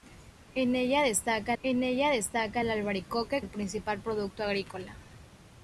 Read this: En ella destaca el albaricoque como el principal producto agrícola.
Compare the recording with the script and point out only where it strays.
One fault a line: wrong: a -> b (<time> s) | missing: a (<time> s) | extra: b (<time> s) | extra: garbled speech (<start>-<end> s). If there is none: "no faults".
extra: en ella destaca (1.6 s)
missing: como (3.4 s)